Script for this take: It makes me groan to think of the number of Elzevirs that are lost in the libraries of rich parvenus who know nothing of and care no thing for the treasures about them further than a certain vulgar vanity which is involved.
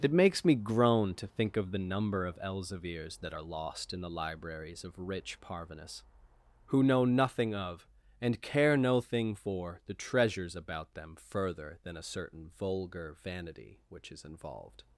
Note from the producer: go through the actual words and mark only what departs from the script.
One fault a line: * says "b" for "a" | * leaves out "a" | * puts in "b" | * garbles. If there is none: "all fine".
all fine